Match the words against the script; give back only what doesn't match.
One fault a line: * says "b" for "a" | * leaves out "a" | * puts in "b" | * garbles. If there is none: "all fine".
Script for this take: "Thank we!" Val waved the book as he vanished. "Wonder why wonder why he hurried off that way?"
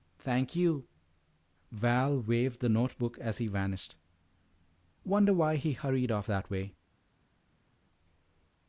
* says "you" for "we"
* puts in "note"
* leaves out "wonder why"